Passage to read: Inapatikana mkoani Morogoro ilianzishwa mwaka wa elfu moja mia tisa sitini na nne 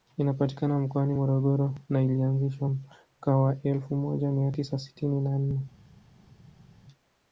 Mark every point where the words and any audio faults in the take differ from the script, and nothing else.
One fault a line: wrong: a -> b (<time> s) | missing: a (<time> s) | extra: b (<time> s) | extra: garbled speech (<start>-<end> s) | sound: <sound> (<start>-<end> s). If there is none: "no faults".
extra: na (1.9 s)